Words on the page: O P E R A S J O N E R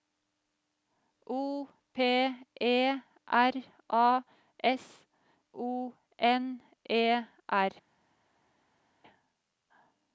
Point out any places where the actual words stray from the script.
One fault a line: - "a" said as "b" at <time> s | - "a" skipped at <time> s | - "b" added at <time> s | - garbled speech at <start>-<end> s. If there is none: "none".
- "J" skipped at 5.0 s